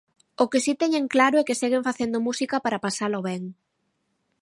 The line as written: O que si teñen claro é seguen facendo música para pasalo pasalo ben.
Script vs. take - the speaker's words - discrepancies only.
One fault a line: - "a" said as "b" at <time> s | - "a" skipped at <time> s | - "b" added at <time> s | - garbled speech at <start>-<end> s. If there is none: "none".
- "que" added at 1.5 s
- "pasalo" skipped at 3.2 s